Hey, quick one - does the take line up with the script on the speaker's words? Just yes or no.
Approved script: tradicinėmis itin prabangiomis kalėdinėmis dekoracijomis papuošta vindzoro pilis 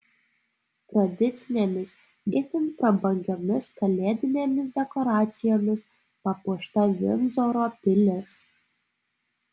yes